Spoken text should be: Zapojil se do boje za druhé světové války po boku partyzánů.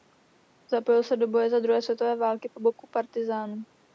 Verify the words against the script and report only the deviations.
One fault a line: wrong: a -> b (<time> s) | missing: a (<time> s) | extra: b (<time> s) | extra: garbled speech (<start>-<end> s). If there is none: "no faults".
no faults